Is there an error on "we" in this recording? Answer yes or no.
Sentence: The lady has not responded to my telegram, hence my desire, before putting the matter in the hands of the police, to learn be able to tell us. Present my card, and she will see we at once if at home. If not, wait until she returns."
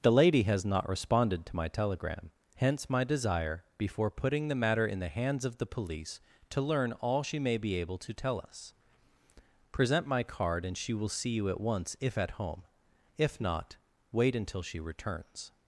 yes